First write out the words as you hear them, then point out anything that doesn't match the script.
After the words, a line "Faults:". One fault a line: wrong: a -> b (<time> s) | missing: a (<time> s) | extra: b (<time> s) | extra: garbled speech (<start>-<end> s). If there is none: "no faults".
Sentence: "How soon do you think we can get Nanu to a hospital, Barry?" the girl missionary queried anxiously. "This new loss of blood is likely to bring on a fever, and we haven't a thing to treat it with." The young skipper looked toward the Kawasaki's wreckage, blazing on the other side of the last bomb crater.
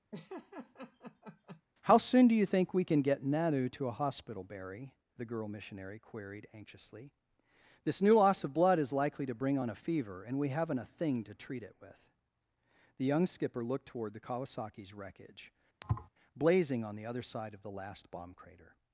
"How soon do you think we can get Nanu to a hospital, Barry?" the girl missionary queried anxiously. "This new loss of blood is likely to bring on a fever, and we haven't a thing to treat it with." The young skipper looked toward the Kawasaki's wreckage, blazing on the other side of the last bomb crater.
Faults:
no faults